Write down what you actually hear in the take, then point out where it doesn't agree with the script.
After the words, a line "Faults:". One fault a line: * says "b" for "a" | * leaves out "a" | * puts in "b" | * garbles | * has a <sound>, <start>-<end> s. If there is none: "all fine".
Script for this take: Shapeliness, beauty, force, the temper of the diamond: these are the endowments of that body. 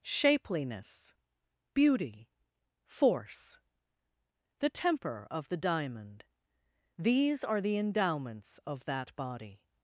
Shapeliness, beauty, force, the temper of the diamond: these are the endowments of that body.
Faults:
all fine